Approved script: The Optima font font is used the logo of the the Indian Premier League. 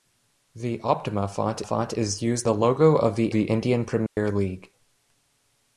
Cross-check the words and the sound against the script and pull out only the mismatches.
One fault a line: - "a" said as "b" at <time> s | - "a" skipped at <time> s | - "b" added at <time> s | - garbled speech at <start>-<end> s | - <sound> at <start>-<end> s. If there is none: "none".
- dropout at 4.1-4.2 s